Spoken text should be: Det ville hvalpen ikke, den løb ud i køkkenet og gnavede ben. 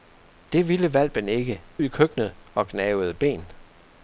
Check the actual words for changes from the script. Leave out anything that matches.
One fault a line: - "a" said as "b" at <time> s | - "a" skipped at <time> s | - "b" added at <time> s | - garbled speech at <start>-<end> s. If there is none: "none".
- "den løb ud" skipped at 1.6 s